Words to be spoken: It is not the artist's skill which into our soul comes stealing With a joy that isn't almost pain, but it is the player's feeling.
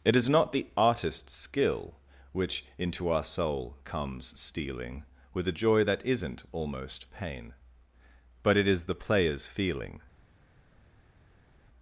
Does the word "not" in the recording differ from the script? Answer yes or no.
no